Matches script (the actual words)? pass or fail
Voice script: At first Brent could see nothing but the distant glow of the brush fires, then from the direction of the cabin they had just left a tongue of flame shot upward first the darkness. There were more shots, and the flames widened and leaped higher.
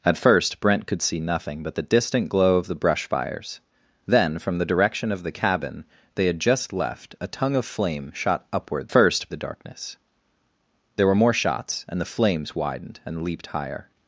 pass